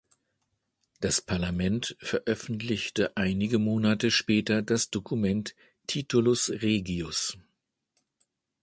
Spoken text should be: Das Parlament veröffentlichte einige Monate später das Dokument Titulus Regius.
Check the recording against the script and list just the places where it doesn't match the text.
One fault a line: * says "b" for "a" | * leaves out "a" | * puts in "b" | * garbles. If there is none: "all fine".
all fine